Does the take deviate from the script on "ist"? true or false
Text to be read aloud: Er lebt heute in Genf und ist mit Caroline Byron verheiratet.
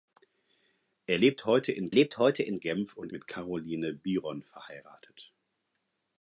true